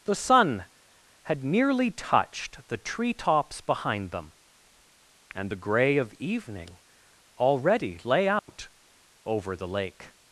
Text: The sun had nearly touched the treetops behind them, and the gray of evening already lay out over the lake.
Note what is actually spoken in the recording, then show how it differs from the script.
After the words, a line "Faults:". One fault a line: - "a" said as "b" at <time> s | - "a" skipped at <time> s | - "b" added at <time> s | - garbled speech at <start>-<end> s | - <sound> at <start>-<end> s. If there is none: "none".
The sun had nearly touched the treetops behind them, and the gray of evening already lay out over the lake.
Faults:
- dropout at 8.4-8.5 s